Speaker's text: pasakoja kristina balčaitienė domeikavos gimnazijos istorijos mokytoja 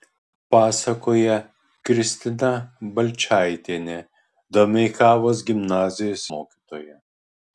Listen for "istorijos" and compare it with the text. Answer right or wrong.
wrong